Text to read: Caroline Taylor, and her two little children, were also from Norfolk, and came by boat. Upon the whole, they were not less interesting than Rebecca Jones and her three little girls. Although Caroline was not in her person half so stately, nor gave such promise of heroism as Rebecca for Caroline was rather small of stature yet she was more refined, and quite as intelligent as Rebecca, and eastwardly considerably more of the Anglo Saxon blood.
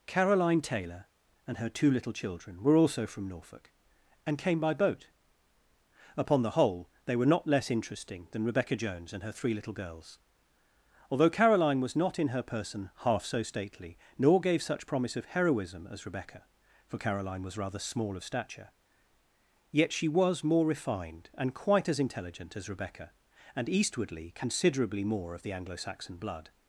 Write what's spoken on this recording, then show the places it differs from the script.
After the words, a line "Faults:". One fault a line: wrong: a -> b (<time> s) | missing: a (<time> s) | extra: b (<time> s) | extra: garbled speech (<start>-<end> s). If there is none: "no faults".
Caroline Taylor, and her two little children, were also from Norfolk, and came by boat. Upon the whole, they were not less interesting than Rebecca Jones and her three little girls. Although Caroline was not in her person half so stately, nor gave such promise of heroism as Rebecca for Caroline was rather small of stature yet she was more refined, and quite as intelligent as Rebecca, and eastwardly considerably more of the Anglo Saxon blood.
Faults:
no faults